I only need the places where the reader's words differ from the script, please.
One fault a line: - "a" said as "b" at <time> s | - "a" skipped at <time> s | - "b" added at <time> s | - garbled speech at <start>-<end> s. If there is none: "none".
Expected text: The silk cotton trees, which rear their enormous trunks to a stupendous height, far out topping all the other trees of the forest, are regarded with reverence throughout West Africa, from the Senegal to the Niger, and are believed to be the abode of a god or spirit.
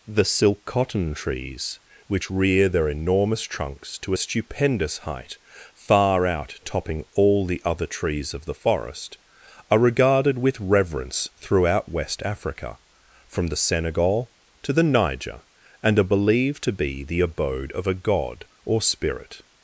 none